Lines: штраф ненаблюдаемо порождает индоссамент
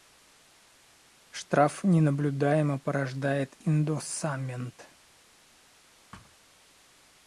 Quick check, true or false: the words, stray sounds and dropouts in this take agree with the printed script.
false